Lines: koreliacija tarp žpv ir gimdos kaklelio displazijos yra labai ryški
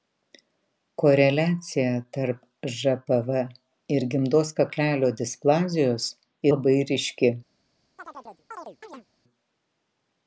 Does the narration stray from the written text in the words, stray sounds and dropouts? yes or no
yes